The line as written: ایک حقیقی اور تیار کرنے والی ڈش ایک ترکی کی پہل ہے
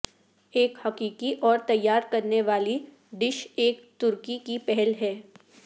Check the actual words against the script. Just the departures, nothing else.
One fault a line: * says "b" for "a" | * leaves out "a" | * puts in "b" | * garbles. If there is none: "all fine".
all fine